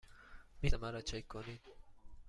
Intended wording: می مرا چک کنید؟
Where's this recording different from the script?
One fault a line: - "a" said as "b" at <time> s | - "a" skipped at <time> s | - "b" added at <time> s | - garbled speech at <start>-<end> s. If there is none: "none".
none